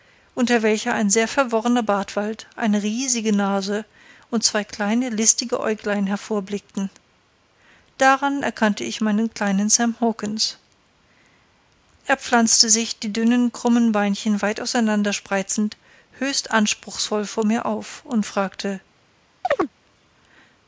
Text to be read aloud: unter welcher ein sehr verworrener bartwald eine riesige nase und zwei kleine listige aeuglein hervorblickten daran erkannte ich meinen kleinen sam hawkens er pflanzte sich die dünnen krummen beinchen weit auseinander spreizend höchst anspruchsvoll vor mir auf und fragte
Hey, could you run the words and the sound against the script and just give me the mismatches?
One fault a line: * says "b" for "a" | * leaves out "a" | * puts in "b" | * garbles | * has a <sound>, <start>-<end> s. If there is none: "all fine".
* has a chirp, 19.4-19.7 s